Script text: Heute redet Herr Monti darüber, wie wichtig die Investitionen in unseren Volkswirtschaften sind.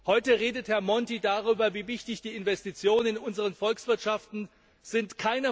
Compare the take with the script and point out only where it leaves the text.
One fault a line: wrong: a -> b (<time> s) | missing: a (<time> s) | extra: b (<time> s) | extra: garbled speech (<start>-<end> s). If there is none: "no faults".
no faults